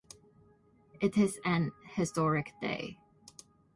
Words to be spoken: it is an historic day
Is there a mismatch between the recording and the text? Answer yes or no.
no